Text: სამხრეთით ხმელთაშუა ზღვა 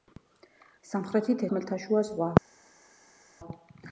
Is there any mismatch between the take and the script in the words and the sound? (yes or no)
no